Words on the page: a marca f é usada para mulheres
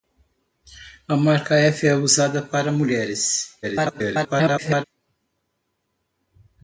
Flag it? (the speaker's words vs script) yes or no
yes